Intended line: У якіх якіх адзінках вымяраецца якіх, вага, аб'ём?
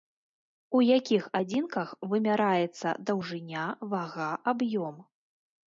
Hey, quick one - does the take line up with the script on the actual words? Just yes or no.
no